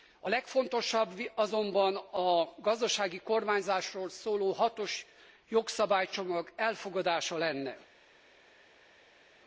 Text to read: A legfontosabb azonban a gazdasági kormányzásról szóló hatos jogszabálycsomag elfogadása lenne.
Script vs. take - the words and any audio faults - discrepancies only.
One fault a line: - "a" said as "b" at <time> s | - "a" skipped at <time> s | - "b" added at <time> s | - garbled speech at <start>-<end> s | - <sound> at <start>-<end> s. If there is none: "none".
none